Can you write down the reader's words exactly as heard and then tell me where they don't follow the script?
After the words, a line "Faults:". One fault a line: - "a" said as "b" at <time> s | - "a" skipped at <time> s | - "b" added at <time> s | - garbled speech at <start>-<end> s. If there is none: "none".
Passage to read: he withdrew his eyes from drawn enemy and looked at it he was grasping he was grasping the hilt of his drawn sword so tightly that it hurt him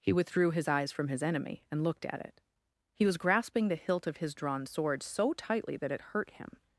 he withdrew his eyes from his enemy and looked at it he was grasping the hilt of his drawn sword so tightly that it hurt him
Faults:
- "drawn" said as "his" at 1.1 s
- "he was grasping" skipped at 3.7 s